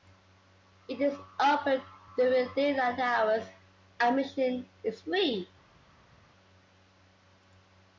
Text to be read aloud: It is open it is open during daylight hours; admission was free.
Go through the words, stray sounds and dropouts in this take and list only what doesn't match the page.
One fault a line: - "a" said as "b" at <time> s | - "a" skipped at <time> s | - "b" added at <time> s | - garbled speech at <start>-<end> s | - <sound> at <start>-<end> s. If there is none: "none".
- "it is open" skipped at 1.8 s
- "was" said as "is" at 4.8 s